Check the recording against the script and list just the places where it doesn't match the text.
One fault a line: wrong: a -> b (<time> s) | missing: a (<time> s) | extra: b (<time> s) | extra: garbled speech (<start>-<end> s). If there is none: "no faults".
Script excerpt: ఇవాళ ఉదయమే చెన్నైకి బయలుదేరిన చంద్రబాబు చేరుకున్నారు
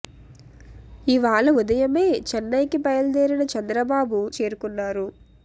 no faults